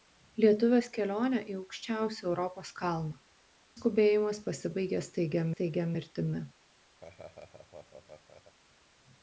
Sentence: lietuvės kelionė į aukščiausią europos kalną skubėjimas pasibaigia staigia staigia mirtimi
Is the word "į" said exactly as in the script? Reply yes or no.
yes